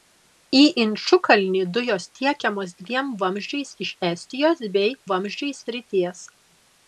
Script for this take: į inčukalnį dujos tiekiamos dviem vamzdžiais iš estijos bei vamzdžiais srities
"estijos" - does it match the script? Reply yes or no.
yes